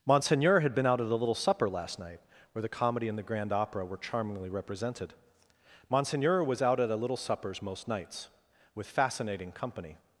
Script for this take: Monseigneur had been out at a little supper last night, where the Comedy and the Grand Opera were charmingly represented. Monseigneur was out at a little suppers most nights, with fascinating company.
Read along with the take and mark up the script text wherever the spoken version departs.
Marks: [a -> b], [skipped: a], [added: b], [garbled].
Monseigneur had been out at a little supper last night, where the Comedy and the Grand Opera were charmingly represented. Monseigneur was out at a little suppers most nights, with fascinating company.